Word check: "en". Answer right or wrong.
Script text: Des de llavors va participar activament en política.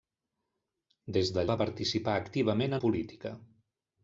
wrong